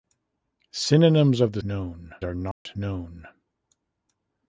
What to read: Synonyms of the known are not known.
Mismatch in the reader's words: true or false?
false